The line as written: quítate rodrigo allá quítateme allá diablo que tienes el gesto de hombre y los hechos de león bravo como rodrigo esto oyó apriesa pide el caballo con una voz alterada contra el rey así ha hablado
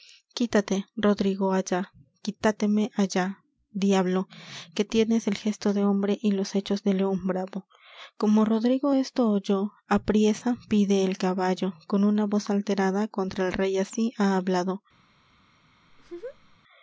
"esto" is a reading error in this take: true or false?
false